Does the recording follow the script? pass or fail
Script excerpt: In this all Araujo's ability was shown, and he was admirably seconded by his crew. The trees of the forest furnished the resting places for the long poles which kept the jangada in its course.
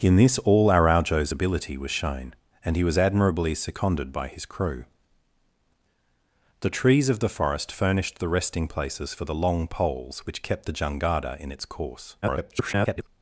fail